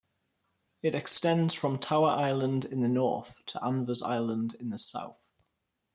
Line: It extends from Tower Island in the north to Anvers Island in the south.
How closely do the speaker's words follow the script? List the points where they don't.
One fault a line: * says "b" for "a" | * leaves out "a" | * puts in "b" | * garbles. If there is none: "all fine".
all fine